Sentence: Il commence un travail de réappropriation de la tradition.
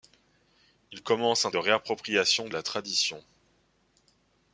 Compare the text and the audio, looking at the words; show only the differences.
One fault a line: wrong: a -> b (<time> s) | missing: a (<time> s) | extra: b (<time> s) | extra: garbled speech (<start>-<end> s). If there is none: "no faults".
missing: travail (1.5 s)
missing: de (2.5 s)